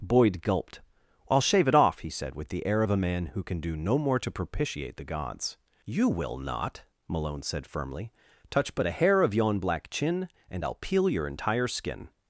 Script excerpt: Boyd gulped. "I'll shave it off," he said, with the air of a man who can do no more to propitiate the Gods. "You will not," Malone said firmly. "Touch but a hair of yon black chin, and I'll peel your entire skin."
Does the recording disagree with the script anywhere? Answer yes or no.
no